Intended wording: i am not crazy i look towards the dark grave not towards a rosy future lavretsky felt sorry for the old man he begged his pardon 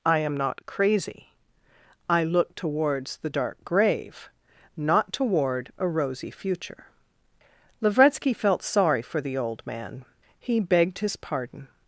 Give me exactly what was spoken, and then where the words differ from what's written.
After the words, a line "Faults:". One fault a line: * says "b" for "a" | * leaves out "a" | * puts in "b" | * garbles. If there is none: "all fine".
i am not crazy i look towards the dark grave not toward a rosy future lavretsky felt sorry for the old man he begged his pardon
Faults:
* says "toward" for "towards"